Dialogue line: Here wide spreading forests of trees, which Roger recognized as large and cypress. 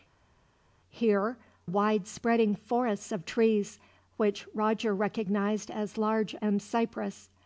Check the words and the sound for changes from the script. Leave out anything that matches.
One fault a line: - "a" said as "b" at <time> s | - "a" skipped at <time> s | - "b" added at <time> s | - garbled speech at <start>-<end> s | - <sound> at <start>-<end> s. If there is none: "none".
none